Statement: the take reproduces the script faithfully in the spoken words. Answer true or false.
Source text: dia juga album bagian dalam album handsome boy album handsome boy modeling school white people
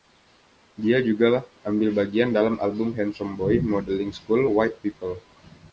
false